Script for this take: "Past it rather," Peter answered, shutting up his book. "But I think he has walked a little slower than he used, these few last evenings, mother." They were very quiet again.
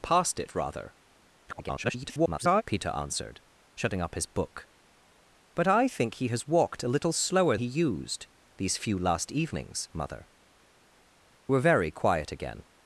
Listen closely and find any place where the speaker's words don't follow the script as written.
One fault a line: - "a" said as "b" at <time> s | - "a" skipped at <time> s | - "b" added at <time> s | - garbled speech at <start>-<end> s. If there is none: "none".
- garbled speech at 1.5-2.6 s
- "than" skipped at 7.6 s
- "They" skipped at 10.3 s